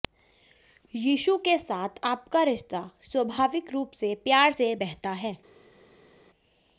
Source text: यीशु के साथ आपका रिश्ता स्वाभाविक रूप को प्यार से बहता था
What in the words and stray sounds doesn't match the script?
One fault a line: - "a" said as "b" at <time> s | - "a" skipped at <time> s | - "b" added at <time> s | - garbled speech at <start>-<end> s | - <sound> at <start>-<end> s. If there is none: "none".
- "को" said as "से" at 3.9 s
- "था" said as "है" at 5.2 s